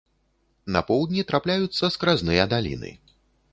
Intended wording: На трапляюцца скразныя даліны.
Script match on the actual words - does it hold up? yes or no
no